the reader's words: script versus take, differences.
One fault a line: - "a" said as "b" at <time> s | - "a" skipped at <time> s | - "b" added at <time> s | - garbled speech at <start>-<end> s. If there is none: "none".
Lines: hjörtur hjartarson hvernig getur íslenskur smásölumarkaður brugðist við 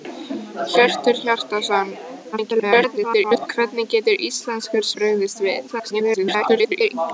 - garbled speech at 2.3-3.5 s
- "smásölumarkaður" skipped at 4.9 s
- garbled speech at 5.7-6.9 s